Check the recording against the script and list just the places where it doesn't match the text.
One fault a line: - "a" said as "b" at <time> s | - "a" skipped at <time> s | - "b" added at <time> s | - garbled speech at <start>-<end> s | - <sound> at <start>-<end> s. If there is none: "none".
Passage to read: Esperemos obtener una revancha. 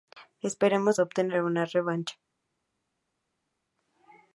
none